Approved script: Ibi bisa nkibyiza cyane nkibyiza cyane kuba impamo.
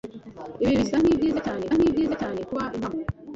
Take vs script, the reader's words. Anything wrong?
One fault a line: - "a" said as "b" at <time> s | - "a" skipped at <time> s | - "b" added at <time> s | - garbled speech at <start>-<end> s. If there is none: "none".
none